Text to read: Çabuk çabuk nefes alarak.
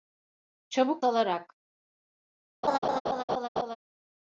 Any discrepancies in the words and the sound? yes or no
yes